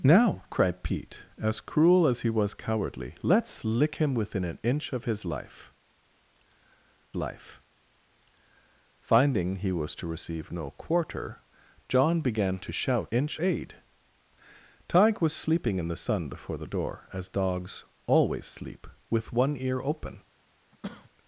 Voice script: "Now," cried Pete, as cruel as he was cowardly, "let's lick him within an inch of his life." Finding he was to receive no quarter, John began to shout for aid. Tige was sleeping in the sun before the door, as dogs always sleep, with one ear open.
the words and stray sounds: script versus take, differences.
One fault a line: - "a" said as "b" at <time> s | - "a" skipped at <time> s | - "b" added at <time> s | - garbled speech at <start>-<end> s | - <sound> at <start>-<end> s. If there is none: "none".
- "life" added at 7.2 s
- "for" said as "inch" at 13.1 s
- cough at 20.7-21.1 s